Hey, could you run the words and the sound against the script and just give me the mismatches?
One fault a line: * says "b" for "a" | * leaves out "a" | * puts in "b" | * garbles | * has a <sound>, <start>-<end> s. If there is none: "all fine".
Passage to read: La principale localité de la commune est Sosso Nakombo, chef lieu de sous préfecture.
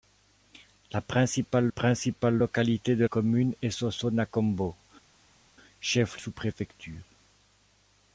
* puts in "principale"
* leaves out "la"
* leaves out "lieu de"